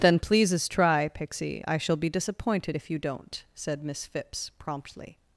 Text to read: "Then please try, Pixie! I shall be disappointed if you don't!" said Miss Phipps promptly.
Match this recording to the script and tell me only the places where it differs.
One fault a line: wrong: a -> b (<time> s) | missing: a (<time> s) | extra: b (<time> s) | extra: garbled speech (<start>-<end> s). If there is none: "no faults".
wrong: please -> pleases (0.2 s)